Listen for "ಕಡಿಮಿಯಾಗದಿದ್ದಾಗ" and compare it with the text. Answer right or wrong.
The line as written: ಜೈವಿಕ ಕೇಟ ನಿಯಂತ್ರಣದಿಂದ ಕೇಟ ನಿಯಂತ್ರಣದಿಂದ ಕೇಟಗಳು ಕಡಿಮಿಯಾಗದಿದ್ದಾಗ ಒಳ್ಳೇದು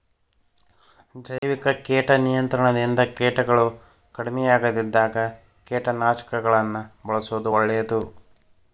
wrong